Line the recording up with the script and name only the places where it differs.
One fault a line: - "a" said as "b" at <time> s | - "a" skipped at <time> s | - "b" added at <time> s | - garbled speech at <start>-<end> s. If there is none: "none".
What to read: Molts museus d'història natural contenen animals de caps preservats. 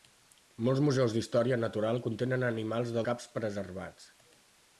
none